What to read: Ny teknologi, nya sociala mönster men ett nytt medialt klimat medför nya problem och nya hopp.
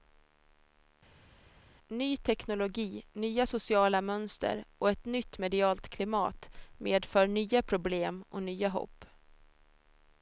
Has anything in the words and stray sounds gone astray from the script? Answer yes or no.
yes